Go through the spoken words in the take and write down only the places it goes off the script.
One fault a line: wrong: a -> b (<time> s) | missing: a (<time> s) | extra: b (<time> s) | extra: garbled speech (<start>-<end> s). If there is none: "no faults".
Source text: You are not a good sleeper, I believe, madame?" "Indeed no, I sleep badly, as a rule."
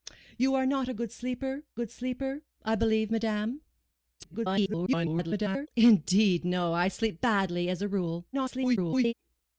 extra: good sleeper (1.7 s)
extra: garbled speech (4.2-5.7 s)
extra: garbled speech (8.3-9.1 s)